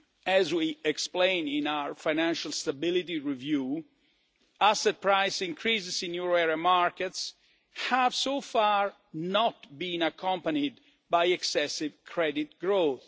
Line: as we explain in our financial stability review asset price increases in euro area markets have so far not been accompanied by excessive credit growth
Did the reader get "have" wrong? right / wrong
right